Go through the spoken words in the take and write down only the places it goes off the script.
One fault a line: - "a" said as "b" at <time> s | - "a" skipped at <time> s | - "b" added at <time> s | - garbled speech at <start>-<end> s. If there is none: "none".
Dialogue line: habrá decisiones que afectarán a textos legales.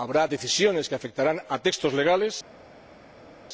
none